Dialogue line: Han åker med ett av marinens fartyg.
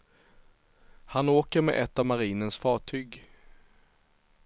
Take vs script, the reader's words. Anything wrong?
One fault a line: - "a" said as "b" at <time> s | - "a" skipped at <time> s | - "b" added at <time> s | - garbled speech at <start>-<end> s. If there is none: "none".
none